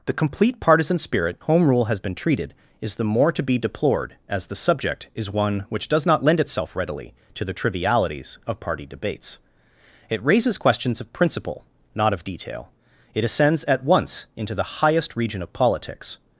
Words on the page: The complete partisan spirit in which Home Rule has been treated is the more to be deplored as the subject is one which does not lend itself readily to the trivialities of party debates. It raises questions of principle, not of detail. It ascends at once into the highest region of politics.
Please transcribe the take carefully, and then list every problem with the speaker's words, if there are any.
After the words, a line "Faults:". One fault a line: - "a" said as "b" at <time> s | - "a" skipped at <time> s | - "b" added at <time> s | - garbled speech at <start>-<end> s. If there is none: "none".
The complete partisan spirit Home Rule has been treated is the more to be deplored as the subject is one which does not lend itself readily to the trivialities of party debates. It raises questions of principle, not of detail. It ascends at once into the highest region of politics.
Faults:
- "in which" skipped at 1.4 s